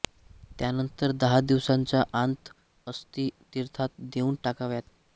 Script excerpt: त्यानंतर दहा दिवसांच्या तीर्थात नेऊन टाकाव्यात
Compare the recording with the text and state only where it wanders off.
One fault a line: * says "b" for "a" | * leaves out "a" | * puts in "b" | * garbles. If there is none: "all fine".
* puts in "आंत अस्थी"